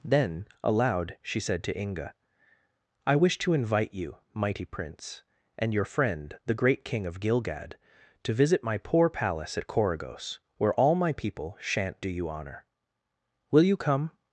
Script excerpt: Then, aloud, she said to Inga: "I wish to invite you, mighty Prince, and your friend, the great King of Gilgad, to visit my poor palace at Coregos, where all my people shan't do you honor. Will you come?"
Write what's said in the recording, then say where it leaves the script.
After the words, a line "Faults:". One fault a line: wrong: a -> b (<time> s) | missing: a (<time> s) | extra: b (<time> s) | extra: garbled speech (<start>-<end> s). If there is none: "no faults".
Then, aloud, she said to Inga: "I wish to invite you, mighty Prince, and your friend, the great King of Gilgad, to visit my poor palace at Coregos, where all my people shan't do you honor. Will you come?"
Faults:
no faults